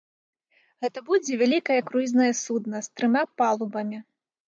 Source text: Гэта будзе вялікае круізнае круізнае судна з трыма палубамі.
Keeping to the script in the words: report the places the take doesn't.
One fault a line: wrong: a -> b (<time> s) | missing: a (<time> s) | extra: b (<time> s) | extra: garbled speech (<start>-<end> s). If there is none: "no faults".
missing: круізнае (2.3 s)